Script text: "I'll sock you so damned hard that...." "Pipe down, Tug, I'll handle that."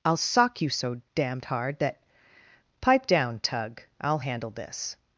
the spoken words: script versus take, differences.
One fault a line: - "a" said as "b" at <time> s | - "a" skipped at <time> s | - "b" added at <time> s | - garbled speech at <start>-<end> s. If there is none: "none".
- "that" said as "this" at 4.5 s